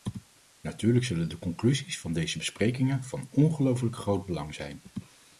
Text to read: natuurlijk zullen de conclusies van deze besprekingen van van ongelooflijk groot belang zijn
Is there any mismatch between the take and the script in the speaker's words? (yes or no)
yes